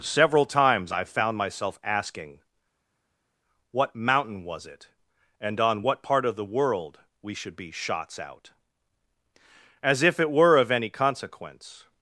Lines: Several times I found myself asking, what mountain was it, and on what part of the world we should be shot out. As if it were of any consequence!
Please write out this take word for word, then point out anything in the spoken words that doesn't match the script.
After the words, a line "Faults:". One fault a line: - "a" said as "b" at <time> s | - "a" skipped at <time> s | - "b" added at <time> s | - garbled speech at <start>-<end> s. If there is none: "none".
Several times I found myself asking, what mountain was it, and on what part of the world we should be shots out. As if it were of any consequence!
Faults:
- "shot" said as "shots" at 7.7 s